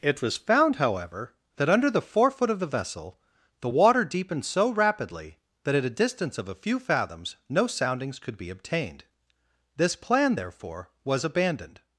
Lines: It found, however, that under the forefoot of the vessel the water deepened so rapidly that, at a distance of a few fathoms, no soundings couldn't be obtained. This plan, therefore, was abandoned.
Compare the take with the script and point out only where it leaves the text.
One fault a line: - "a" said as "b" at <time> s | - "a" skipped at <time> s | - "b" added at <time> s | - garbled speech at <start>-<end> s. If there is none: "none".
- "was" added at 0.2 s
- "couldn't" said as "could" at 8.2 s